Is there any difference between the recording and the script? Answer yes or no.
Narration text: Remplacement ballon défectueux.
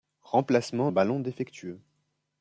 no